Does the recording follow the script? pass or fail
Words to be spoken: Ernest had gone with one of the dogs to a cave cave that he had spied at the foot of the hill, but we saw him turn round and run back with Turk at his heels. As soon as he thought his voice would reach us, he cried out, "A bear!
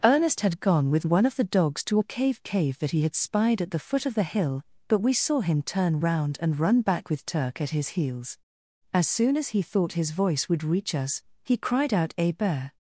pass